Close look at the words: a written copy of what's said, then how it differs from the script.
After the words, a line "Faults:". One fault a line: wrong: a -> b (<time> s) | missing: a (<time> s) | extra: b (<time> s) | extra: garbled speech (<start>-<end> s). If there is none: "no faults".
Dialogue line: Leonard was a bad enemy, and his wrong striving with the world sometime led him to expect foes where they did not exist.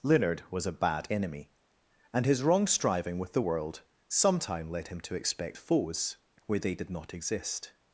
Leonard was a bad enemy, and his wrong striving with the world sometime led him to expect foes where they did not exist.
Faults:
no faults